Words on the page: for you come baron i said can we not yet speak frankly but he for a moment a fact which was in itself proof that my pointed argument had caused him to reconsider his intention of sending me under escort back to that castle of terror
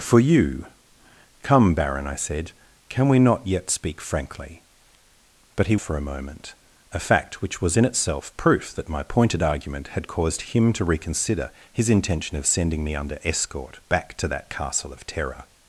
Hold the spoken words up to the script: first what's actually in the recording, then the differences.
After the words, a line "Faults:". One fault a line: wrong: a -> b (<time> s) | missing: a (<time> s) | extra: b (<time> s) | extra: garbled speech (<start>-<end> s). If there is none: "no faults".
for you come baron i said can we not yet speak frankly but he for a moment a fact which was in itself proof that my pointed argument had caused him to reconsider his intention of sending me under escort back to that castle of terror
Faults:
no faults